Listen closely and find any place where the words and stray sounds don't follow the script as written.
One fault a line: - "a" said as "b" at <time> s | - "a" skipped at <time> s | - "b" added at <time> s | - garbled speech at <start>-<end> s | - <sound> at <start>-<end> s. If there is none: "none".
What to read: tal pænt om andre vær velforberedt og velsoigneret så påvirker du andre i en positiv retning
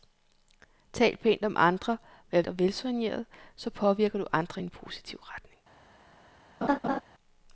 - "velforberedt" skipped at 2.4 s
- laugh at 6.6-7.0 s